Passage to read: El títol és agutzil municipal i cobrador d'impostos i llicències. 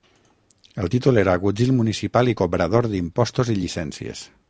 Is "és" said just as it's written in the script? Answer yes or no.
no